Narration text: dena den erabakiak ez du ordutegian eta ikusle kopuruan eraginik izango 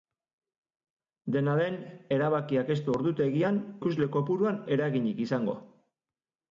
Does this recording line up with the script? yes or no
no